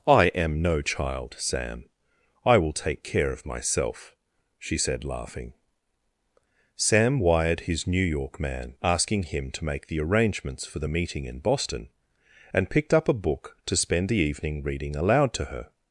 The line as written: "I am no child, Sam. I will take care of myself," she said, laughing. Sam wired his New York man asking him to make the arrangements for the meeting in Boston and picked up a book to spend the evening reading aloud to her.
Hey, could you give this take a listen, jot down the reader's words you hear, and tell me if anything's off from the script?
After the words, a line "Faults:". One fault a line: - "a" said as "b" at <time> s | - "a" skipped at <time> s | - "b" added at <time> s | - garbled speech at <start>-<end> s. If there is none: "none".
"I am no child, Sam. I will take care of myself," she said, laughing. Sam wired his New York man asking him to make the arrangements for the meeting in Boston and picked up a book to spend the evening reading aloud to her.
Faults:
none